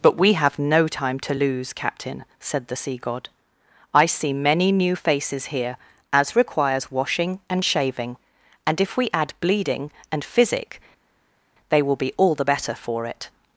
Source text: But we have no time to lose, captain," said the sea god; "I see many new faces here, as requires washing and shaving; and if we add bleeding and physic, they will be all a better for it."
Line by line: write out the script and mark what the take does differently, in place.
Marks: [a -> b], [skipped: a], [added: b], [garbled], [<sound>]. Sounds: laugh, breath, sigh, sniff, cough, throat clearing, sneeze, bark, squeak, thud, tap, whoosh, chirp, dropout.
But we have no time to lose, captain," said the sea god; "I see many new faces here, as requires washing and shaving; and if we add bleeding and physic, they will be all [a -> the] better for it."